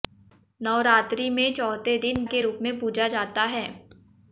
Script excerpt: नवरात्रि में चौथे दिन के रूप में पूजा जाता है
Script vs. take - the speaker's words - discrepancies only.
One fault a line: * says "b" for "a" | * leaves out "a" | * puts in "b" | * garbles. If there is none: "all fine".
all fine